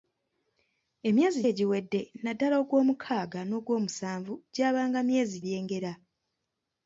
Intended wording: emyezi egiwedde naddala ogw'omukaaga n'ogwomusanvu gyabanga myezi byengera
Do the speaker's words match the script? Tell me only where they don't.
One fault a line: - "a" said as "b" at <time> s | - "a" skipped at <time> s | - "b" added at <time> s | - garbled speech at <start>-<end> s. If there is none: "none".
none